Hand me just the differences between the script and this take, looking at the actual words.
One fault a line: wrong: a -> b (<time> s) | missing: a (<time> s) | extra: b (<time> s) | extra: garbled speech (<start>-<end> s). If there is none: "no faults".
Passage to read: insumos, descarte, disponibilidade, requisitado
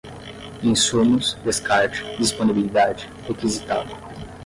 no faults